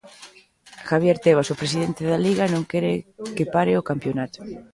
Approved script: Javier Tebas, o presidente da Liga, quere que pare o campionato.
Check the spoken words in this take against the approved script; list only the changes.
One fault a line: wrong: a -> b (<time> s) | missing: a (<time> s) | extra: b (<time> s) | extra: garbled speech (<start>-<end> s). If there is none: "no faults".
extra: non (2.5 s)